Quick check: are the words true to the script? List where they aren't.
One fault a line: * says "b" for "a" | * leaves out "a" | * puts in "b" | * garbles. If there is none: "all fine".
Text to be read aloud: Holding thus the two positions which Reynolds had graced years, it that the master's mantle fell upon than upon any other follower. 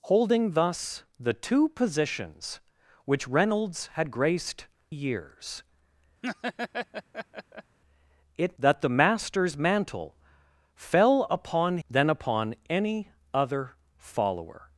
all fine